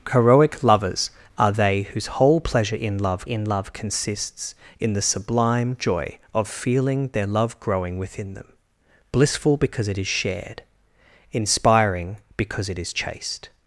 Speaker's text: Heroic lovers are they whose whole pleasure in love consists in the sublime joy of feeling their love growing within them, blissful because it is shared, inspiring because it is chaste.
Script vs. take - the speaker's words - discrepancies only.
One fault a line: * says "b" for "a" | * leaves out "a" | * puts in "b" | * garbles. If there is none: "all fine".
* puts in "in love"